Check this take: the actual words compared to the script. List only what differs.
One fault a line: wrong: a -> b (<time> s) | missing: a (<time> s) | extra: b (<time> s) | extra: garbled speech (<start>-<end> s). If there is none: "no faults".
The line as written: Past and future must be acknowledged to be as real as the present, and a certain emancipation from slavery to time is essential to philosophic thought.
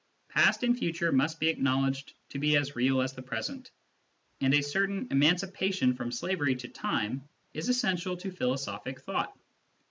no faults